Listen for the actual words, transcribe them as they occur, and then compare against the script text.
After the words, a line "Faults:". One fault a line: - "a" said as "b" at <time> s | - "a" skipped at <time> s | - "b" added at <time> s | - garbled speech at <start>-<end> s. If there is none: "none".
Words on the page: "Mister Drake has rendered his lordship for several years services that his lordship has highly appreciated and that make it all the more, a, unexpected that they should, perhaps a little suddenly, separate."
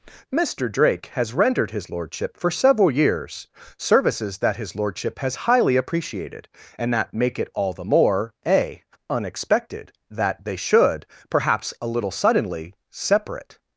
"Mister Drake has rendered his lordship for several years services that his lordship has highly appreciated and that make it all the more, a, unexpected that they should, perhaps a little suddenly, separate."
Faults:
none